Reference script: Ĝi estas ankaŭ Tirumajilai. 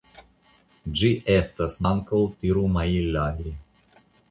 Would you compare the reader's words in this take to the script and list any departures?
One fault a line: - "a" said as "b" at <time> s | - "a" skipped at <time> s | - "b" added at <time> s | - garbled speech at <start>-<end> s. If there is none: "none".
none